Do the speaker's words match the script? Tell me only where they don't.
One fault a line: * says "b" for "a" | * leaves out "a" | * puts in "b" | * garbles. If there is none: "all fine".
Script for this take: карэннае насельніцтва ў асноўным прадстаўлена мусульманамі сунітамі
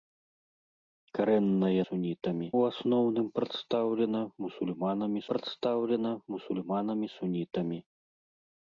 * says "сунітамі" for "насельніцтва"
* puts in "прадстаўлена мусульманамі"